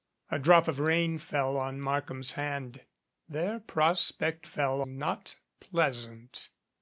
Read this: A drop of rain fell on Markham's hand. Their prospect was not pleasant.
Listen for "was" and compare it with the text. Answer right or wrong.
wrong